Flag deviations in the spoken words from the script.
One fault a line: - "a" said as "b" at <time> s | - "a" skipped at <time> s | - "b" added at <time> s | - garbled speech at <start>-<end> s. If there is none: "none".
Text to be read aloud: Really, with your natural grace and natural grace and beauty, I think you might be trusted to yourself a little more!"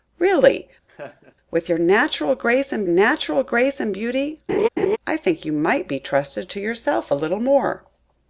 none